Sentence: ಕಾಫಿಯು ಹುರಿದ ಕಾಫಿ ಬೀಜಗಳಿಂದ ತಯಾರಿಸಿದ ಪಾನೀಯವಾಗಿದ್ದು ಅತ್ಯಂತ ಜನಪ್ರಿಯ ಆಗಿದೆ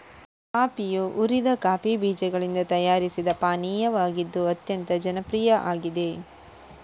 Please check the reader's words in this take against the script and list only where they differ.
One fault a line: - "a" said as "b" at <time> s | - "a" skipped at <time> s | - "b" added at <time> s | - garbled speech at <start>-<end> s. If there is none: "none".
none